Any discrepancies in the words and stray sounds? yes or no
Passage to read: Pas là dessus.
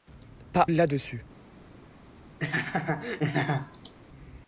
yes